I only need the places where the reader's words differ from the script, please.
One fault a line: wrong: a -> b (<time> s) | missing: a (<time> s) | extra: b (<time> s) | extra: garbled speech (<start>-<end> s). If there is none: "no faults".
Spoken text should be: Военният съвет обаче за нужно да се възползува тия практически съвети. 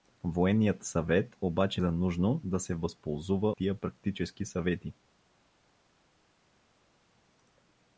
no faults